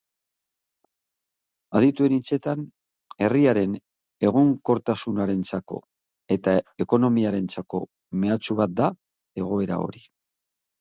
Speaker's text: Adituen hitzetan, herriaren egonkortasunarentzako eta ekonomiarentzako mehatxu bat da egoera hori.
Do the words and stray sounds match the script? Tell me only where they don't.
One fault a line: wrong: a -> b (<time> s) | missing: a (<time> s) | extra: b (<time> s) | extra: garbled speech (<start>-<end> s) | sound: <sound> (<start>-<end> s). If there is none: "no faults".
no faults